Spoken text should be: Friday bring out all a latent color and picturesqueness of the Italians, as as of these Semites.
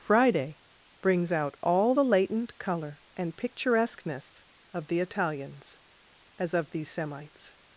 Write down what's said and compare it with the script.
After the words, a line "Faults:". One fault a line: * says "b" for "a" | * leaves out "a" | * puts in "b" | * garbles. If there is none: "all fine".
Friday brings out all the latent color and picturesqueness of the Italians, as of these Semites.
Faults:
* says "brings" for "bring"
* says "the" for "a"
* leaves out "as"